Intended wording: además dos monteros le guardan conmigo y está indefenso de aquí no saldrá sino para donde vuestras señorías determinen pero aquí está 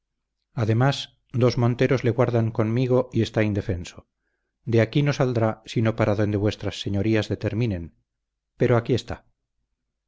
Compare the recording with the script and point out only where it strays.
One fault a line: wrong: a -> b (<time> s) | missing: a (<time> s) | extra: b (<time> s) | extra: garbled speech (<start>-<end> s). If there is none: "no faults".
no faults